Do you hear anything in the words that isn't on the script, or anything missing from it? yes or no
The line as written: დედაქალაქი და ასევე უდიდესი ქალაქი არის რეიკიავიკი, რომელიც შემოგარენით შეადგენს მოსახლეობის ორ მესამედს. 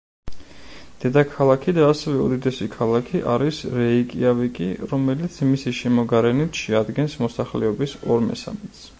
yes